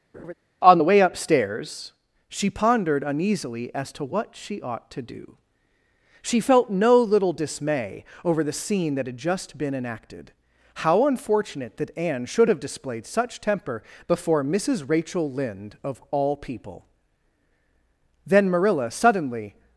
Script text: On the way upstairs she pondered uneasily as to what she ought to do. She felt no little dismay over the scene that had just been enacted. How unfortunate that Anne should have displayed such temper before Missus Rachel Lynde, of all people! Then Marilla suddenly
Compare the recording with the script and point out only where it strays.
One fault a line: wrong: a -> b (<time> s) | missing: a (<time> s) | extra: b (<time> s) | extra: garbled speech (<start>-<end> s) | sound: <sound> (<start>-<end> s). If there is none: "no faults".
sound: laugh (0.1-0.3 s)